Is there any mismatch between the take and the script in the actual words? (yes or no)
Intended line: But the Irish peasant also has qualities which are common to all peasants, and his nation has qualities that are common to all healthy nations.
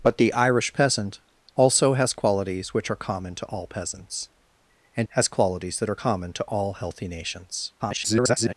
yes